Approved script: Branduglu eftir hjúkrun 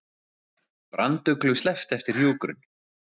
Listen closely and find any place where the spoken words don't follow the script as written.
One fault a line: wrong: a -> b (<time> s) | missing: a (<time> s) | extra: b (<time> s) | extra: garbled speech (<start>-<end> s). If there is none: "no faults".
extra: sleppt (1.6 s)